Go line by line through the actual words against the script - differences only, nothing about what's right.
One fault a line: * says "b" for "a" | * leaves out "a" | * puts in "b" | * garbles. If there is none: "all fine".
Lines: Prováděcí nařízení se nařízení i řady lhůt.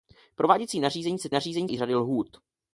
all fine